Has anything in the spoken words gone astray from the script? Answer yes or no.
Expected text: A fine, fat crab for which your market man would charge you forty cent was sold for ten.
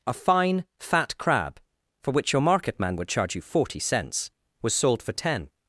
yes